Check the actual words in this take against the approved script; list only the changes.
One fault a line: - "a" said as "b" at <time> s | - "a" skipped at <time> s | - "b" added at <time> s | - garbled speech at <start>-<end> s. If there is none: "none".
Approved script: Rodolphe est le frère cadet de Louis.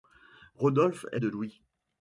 - "le frère cadet" skipped at 1.2 s